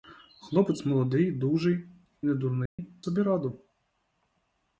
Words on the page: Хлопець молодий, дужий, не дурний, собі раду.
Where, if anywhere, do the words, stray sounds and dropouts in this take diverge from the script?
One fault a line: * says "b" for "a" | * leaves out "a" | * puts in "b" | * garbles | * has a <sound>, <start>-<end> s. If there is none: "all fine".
* has a dropout, 2.7-2.8 s